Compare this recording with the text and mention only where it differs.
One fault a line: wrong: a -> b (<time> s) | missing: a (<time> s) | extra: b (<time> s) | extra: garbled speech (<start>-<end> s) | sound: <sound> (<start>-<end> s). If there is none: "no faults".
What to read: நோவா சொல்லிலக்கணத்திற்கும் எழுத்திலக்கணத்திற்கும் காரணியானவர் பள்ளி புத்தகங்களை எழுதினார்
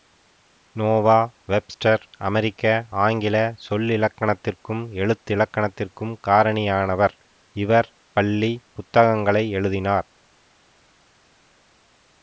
extra: வெப்ஸ்டர் அமெரிக்க ஆங்கில (1.5 s)
extra: இவர் (7.6 s)